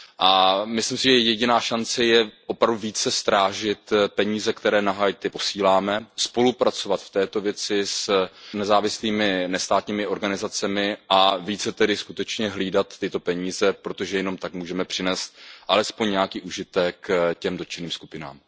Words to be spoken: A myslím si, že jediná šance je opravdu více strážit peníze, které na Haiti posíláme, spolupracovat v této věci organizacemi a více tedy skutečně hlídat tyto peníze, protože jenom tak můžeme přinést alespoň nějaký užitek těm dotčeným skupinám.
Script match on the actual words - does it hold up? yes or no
no